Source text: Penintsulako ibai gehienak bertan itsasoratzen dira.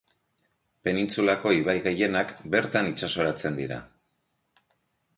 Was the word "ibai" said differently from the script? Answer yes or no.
no